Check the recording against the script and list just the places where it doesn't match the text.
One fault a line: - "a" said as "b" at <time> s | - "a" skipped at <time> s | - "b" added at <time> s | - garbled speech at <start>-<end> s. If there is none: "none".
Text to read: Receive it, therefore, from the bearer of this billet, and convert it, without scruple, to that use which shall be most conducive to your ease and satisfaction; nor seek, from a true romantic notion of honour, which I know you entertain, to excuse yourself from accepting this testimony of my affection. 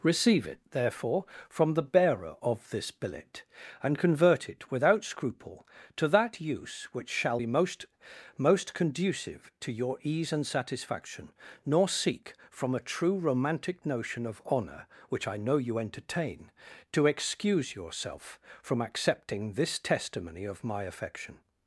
- "most" added at 8.4 s